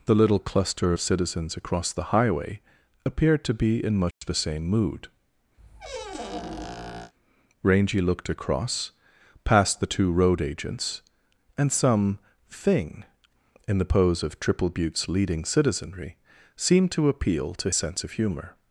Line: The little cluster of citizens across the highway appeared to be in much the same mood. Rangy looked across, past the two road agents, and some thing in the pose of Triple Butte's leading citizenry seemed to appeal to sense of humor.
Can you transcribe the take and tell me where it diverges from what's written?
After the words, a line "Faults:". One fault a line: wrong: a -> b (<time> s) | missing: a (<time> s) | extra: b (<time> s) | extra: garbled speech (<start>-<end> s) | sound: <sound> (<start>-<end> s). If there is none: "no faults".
The little cluster of citizens across the highway appeared to be in much the same mood. Rangy looked across, past the two road agents, and some thing in the pose of Triple Butte's leading citizenry seemed to appeal to sense of humor.
Faults:
sound: dropout (4.1-4.2 s)
sound: squeak (5.6-7.1 s)